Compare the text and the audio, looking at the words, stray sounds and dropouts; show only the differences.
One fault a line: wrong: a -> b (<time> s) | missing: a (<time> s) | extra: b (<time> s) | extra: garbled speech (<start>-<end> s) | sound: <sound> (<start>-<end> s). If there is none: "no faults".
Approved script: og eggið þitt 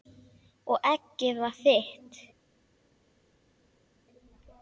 extra: var (1.4 s)